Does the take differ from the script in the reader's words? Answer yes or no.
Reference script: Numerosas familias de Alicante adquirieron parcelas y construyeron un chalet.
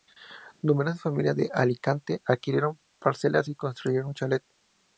no